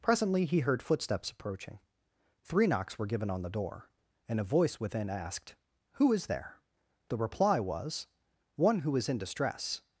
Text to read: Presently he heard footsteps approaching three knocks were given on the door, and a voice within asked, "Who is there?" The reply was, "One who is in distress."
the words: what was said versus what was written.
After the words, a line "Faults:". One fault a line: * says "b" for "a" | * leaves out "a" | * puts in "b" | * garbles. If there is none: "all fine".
Presently he heard footsteps approaching three knocks were given on the door, and a voice within asked, "Who is there?" The reply was, "One who is in distress."
Faults:
all fine